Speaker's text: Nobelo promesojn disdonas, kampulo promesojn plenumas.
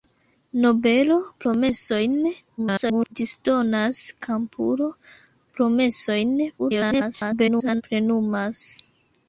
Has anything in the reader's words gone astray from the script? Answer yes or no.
yes